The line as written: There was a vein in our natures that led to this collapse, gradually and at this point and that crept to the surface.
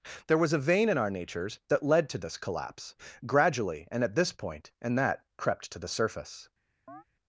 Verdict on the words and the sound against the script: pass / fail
fail